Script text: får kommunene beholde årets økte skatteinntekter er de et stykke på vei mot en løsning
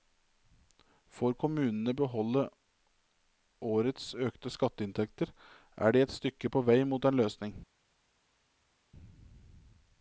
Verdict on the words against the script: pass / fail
pass